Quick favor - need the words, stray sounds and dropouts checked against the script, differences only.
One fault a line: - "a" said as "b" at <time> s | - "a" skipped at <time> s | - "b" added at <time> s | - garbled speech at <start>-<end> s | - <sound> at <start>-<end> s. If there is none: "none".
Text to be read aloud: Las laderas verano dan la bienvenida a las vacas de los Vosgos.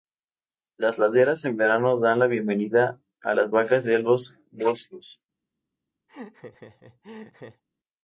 - "en" added at 1.4 s
- laugh at 6.1-7.6 s